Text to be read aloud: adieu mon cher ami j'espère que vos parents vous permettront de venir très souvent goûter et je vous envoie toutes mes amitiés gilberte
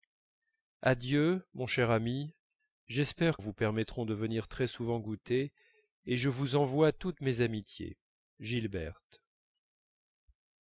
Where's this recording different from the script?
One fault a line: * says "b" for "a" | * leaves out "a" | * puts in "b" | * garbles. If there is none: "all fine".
* leaves out "que vos parents"